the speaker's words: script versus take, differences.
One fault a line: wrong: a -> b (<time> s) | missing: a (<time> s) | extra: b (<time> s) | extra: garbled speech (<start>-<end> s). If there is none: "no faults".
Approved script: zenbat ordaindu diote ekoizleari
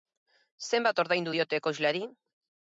no faults